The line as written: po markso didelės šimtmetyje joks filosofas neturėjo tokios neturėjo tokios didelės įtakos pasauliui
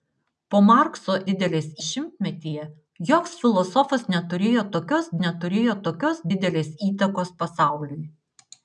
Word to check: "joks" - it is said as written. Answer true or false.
true